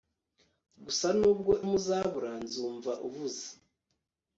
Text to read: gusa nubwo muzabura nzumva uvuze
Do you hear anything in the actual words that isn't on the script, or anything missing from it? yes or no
no